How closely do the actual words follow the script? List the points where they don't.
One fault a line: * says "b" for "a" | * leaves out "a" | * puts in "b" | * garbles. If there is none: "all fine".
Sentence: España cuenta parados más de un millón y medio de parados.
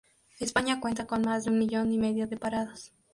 * says "con" for "parados"